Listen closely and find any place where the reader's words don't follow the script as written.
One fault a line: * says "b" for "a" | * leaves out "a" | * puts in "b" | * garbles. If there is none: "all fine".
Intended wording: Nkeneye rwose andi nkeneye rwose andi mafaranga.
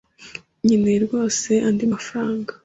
* leaves out "nkeneye rwose andi"